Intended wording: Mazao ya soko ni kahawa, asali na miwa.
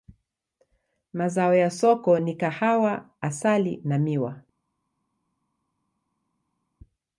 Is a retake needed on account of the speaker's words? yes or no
no